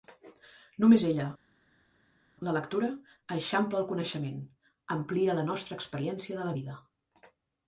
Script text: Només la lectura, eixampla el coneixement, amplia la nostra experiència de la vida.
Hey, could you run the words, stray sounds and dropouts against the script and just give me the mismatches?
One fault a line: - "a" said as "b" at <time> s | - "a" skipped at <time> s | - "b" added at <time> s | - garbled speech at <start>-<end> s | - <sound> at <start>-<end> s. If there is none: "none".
- "ella" added at 1.1 s